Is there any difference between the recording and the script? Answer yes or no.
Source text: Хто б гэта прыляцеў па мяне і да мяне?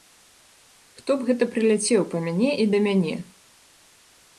no